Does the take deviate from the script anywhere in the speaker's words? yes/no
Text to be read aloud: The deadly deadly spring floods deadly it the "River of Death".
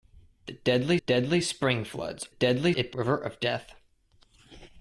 no